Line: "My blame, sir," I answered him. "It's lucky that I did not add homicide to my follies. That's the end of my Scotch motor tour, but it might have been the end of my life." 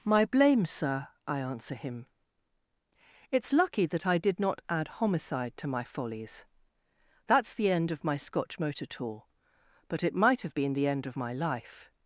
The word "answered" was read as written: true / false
false